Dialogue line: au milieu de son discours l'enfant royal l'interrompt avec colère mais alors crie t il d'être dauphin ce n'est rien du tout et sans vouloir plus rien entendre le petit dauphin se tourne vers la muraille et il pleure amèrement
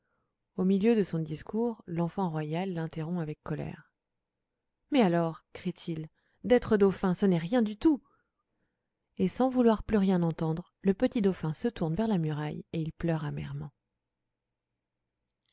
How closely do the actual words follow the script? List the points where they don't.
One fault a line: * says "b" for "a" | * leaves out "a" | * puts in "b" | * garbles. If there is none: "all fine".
all fine